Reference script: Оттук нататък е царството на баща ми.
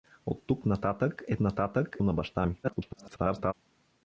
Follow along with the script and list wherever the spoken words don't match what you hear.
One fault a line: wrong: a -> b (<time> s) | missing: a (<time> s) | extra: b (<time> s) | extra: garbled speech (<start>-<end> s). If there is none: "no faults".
wrong: царството -> нататък (1.4 s)
extra: garbled speech (2.6-3.5 s)